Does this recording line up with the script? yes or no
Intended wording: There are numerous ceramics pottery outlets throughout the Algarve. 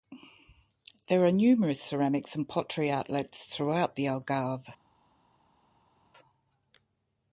no